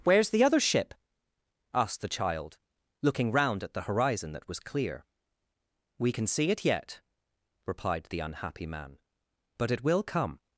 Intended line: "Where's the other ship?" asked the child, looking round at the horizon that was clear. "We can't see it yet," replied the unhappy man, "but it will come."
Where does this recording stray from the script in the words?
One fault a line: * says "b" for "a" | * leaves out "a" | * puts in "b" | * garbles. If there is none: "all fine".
* says "can" for "can't"